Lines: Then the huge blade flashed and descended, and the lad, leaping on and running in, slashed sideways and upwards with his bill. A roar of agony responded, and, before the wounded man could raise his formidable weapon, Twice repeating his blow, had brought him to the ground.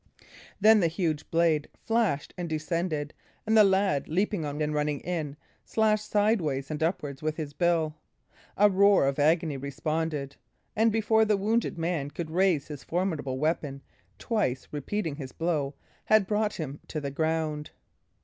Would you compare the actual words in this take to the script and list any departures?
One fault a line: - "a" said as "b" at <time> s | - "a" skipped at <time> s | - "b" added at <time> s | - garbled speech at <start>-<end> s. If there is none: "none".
none